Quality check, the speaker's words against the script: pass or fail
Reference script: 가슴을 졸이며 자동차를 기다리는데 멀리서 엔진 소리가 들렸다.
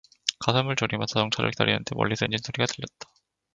pass